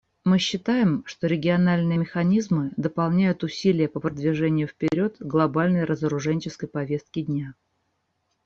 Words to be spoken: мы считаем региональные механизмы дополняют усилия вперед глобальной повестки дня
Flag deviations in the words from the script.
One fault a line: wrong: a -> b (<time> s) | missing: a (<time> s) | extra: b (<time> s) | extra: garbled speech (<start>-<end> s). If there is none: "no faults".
extra: что (1.0 s)
extra: по продвижению (3.9 s)
extra: разоруженческой (5.8 s)